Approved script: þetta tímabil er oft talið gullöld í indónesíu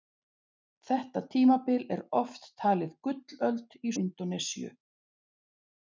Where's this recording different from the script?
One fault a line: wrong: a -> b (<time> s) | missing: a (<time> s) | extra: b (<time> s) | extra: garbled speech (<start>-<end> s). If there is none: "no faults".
no faults